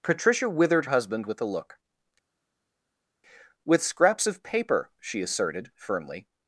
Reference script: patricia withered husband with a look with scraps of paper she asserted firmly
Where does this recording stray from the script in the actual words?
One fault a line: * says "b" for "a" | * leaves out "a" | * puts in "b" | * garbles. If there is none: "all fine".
all fine